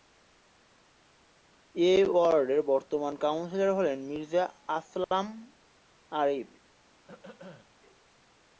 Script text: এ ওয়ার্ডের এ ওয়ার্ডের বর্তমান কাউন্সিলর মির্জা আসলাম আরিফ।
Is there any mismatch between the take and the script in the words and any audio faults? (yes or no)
yes